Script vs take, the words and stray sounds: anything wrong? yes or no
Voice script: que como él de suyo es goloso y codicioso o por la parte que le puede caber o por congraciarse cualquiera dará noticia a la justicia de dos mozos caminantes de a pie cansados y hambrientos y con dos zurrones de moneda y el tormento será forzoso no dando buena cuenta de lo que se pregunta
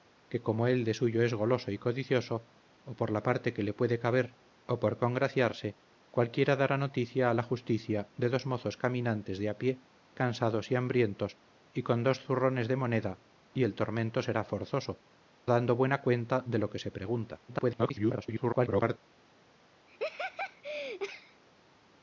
yes